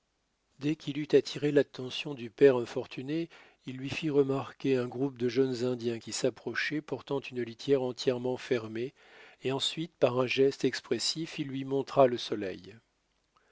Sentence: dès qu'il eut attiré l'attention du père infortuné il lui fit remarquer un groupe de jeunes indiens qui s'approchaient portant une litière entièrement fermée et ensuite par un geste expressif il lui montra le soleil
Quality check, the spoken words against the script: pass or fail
pass